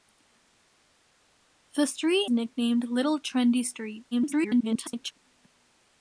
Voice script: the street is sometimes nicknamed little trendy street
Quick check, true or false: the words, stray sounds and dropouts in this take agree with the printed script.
false